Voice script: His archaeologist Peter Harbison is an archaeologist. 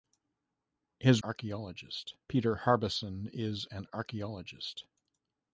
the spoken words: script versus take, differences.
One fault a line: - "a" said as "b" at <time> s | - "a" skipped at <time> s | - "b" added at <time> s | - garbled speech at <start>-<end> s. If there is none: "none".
none